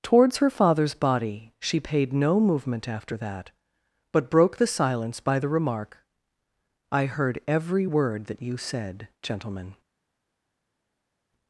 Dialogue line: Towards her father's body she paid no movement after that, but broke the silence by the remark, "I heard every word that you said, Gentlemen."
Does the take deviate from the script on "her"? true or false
false